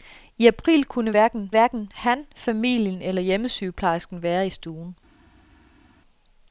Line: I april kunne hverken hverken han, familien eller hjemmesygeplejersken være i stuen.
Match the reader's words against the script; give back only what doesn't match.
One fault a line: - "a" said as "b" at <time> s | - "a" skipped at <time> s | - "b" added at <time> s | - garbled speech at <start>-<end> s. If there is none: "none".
none